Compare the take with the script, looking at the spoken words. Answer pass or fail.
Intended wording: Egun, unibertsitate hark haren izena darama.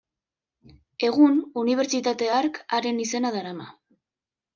pass